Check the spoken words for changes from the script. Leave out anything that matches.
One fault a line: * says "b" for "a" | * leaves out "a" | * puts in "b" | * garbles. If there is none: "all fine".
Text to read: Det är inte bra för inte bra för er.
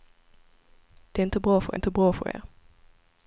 all fine